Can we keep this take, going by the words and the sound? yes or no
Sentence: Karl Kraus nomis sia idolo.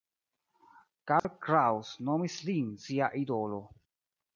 no